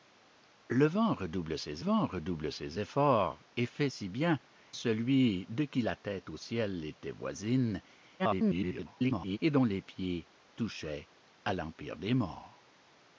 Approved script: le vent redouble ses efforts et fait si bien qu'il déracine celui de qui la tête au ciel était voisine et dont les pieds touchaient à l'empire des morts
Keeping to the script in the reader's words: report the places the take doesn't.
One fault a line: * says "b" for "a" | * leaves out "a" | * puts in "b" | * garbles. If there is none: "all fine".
* puts in "vent redouble ses"
* leaves out "qu'il déracine"
* garbles